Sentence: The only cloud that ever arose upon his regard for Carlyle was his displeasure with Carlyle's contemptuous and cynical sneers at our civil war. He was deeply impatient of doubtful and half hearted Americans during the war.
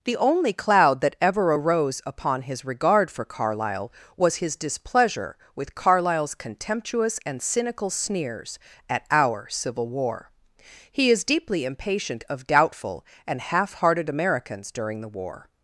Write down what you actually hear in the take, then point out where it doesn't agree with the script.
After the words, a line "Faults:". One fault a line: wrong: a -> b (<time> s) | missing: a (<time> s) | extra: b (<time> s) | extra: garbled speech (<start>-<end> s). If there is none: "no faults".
The only cloud that ever arose upon his regard for Carlyle was his displeasure with Carlyle's contemptuous and cynical sneers at our civil war. He is deeply impatient of doubtful and half hearted Americans during the war.
Faults:
wrong: was -> is (11.1 s)